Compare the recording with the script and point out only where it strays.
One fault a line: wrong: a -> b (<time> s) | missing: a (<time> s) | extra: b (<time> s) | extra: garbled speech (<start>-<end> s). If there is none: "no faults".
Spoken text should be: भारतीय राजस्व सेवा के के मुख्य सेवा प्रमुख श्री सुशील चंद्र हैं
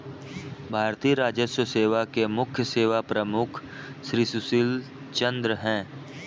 missing: के (2.2 s)